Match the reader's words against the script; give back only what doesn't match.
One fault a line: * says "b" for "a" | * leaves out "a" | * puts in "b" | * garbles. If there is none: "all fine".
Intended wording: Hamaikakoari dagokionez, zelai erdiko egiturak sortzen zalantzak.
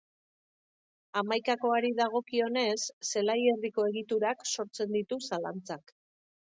* puts in "ditu"